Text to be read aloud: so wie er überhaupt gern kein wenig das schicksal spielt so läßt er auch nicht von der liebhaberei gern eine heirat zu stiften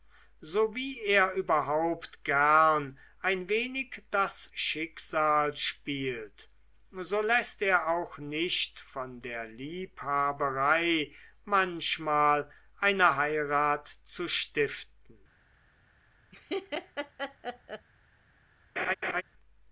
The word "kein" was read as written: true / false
false